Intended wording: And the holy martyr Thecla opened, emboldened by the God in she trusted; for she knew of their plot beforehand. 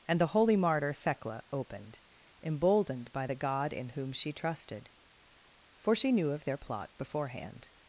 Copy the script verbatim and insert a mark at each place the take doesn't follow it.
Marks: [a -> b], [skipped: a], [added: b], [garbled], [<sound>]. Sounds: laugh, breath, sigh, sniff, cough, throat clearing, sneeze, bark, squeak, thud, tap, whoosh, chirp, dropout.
And the holy martyr Thecla opened, emboldened by the God in [added: whom] she trusted; for she knew of their plot beforehand.